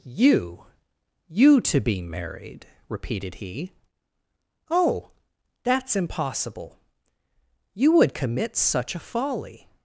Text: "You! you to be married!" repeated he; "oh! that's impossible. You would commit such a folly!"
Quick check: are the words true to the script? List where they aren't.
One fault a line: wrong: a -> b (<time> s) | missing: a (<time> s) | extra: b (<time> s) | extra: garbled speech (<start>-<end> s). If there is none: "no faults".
no faults